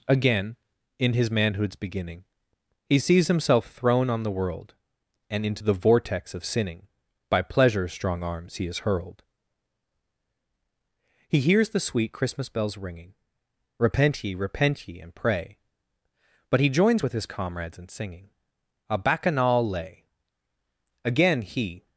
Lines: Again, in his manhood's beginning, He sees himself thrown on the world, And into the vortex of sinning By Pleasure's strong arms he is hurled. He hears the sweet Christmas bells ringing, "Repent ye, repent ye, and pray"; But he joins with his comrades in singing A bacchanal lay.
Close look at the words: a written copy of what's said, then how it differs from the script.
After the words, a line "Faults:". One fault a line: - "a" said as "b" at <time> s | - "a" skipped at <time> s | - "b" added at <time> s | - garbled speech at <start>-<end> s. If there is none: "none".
Again, in his manhood's beginning, He sees himself thrown on the world, And into the vortex of sinning By Pleasure's strong arms he is hurled. He hears the sweet Christmas bells ringing, "Repent ye, repent ye, and pray"; But he joins with his comrades in singing A bacchanal lay. Again he
Faults:
- "Again he" added at 21.0 s